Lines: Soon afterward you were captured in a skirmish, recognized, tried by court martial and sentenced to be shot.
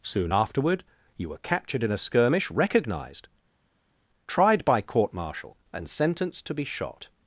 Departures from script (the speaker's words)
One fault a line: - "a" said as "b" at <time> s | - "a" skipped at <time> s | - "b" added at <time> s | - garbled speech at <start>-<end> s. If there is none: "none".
none